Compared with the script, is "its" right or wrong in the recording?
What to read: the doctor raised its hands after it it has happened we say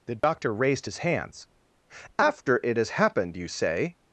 wrong